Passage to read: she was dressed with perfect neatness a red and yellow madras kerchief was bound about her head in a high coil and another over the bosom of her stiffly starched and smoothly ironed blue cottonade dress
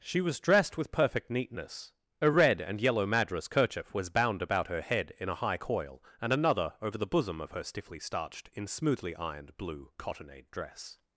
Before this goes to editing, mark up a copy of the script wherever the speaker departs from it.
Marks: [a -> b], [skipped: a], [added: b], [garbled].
she was dressed with perfect neatness a red and yellow madras kerchief was bound about her head in a high coil and another over the bosom of her stiffly starched [and -> in] smoothly ironed blue cottonade dress